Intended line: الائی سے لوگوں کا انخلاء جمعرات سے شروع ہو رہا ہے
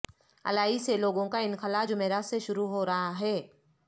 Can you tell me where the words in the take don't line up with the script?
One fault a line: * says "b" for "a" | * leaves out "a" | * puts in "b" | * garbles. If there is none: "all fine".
all fine